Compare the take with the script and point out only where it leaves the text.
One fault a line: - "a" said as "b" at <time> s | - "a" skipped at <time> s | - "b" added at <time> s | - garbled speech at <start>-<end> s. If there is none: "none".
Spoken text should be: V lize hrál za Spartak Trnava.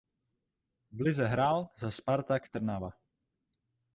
none